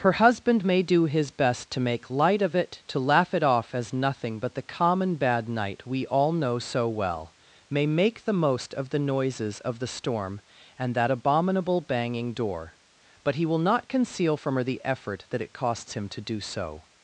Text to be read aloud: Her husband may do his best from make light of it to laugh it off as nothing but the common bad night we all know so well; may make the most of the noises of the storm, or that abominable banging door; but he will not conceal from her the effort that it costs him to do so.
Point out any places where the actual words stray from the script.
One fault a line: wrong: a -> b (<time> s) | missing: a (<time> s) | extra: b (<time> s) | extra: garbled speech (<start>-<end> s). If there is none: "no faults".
wrong: from -> to (1.7 s)
wrong: or -> and (10.8 s)